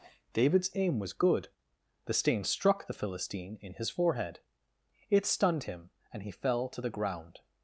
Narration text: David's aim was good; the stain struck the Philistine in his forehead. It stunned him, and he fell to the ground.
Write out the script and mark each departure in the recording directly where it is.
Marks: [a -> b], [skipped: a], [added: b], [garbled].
David's aim was good; the stain struck the Philistine in his forehead. It stunned him, and he fell to the ground.